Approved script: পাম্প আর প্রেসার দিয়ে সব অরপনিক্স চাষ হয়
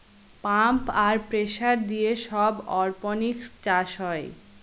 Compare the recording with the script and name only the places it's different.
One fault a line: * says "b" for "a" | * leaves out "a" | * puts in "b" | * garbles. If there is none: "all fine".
all fine